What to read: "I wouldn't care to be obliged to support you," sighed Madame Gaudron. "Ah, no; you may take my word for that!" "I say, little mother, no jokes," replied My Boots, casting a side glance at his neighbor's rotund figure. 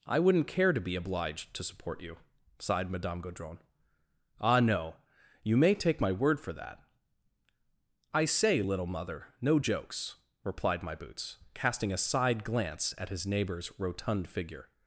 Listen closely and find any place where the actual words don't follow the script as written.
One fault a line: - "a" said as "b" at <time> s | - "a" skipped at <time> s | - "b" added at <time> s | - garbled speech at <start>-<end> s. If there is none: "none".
none